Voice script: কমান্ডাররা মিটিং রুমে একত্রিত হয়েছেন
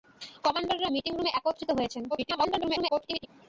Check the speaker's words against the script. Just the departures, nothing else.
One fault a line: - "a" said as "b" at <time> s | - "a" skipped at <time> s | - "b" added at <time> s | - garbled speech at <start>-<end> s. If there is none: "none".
- garbled speech at 2.1-3.3 s